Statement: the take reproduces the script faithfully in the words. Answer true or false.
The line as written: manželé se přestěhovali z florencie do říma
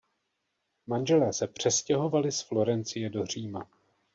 true